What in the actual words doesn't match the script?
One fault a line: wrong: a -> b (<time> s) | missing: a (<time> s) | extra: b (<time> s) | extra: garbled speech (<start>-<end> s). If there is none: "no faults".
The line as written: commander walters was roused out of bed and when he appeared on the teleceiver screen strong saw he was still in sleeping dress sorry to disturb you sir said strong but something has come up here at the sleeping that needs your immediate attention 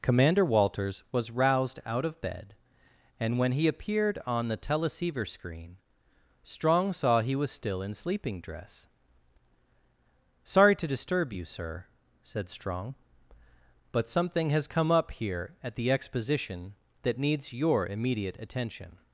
wrong: sleeping -> exposition (15.9 s)